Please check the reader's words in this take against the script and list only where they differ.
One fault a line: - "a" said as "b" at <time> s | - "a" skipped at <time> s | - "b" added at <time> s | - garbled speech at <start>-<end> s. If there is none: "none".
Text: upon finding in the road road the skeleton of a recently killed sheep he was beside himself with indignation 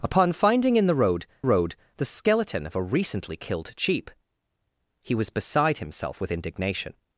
none